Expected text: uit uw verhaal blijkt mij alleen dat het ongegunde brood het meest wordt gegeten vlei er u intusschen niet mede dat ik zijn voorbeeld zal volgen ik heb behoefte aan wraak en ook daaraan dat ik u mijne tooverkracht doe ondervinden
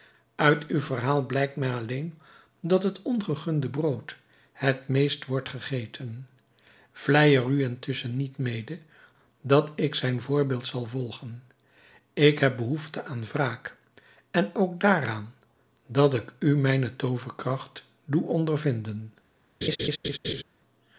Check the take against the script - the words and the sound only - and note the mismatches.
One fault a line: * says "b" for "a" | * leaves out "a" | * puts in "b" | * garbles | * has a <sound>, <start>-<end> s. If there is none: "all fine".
* has a laugh, 19.6-20.4 s